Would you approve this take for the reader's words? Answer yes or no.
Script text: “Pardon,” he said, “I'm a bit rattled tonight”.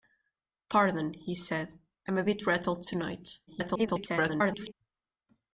no